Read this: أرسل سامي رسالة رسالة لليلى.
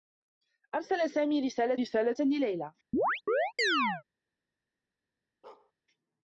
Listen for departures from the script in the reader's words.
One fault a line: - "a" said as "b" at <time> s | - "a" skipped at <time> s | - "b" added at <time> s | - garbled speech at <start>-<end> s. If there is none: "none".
none